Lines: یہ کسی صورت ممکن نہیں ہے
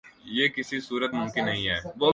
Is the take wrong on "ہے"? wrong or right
right